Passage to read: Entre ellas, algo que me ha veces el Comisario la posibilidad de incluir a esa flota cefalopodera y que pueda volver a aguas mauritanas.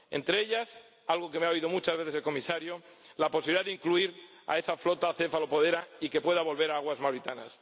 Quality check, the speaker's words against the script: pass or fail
fail